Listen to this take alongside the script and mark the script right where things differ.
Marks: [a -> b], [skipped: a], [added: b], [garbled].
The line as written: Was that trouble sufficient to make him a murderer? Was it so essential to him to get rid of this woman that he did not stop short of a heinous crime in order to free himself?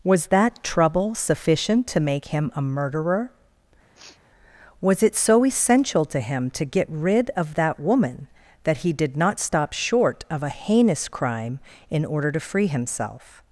Was that trouble sufficient to make him a murderer? Was it so essential to him to get rid of [this -> that] woman that he did not stop short of a heinous crime in order to free himself?